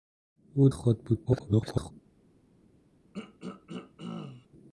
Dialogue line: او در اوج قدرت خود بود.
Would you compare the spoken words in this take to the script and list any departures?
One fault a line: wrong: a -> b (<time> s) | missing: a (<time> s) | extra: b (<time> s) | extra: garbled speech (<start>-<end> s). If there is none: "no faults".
missing: در اوج قدرت (0.7 s)
extra: garbled speech (1.3-1.9 s)